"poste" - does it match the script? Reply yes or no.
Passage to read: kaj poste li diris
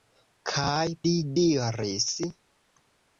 no